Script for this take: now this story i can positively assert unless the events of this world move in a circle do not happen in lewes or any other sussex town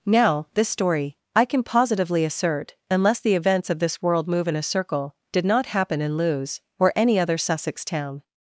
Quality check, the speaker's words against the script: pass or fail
fail